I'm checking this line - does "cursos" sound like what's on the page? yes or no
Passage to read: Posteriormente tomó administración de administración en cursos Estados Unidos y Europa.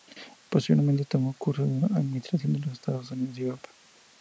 no